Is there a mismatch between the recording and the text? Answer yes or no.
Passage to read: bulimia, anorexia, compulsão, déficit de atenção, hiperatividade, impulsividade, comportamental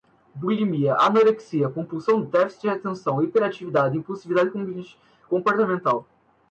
no